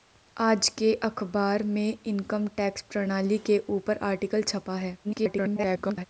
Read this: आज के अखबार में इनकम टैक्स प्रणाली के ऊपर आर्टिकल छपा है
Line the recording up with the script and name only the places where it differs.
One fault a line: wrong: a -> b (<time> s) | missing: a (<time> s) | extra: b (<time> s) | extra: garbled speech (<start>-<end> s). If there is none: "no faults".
extra: garbled speech (5.0-6.1 s)